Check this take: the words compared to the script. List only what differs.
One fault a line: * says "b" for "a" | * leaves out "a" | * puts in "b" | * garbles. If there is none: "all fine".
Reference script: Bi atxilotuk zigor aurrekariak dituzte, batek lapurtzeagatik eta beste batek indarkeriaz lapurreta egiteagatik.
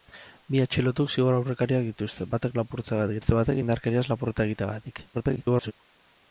* leaves out "eta"
* garbles